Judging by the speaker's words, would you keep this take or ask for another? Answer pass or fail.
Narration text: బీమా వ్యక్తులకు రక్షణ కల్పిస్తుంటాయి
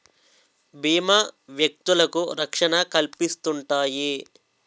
pass